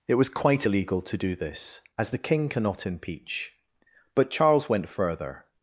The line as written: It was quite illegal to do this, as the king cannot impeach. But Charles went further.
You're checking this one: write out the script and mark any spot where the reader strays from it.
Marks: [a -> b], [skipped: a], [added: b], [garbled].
It was quite illegal to do this, as the king cannot impeach. But Charles went further.